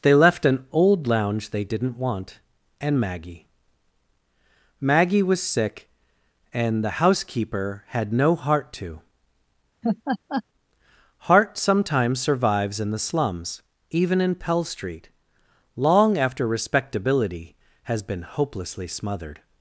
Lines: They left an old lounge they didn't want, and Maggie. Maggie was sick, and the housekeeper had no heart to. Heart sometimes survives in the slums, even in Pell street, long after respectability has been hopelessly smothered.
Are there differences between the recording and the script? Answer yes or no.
no